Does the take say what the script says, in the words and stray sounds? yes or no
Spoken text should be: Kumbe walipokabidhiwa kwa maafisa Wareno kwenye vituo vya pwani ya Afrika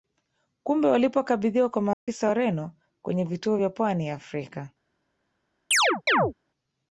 no